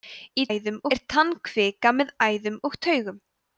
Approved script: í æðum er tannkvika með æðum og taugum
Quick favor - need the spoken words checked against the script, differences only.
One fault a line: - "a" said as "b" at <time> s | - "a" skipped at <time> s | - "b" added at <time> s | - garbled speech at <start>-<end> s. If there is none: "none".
none